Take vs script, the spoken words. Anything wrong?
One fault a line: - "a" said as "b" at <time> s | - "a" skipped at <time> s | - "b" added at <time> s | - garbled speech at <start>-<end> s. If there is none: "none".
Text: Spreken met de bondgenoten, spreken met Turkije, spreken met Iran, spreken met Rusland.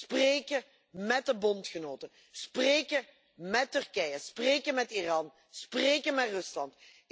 none